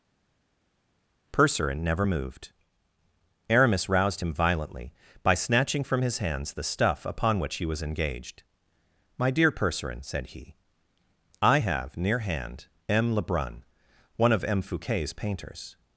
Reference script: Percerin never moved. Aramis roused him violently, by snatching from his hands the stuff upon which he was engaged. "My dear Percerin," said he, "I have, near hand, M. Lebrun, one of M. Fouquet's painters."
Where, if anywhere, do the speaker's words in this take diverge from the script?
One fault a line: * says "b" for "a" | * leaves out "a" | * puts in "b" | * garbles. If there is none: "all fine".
all fine